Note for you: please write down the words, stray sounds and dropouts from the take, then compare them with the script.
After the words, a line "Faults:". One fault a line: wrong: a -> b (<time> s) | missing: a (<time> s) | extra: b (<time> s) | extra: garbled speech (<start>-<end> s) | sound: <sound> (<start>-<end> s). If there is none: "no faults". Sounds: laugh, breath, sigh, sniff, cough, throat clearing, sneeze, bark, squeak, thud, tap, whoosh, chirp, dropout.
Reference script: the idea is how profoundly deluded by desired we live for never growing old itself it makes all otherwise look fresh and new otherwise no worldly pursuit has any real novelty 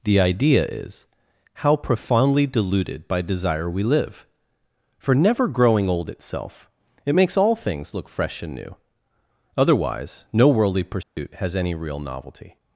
the idea is how profoundly deluded by desire we live for never growing old itself it makes all things look fresh and new otherwise no worldly pursuit has any real novelty
Faults:
wrong: desired -> desire (3.2 s)
wrong: otherwise -> things (7.5 s)
sound: dropout (11.0-11.2 s)